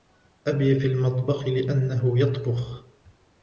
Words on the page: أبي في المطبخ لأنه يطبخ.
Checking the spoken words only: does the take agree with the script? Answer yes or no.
yes